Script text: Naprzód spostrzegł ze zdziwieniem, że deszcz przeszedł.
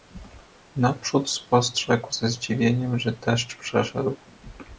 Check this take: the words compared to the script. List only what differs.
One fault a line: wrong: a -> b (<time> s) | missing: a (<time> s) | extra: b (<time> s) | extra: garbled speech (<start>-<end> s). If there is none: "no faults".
no faults